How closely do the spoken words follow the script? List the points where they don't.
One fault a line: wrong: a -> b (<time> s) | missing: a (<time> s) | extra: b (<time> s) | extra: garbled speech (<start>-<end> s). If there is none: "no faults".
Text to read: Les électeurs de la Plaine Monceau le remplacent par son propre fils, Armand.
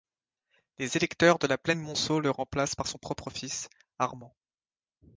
no faults